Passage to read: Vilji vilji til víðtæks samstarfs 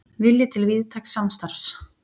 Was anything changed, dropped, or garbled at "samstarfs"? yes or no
no